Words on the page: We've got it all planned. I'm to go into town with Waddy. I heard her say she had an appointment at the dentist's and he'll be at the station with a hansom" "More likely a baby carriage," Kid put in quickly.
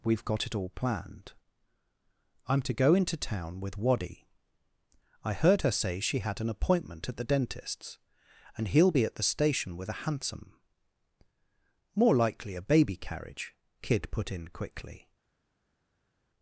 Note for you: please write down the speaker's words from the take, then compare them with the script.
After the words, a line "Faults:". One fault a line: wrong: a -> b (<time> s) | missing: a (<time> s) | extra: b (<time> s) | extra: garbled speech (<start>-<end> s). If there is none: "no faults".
We've got it all planned. I'm to go into town with Waddy. I heard her say she had an appointment at the dentist's and he'll be at the station with a hansom" "More likely a baby carriage," Kid put in quickly.
Faults:
no faults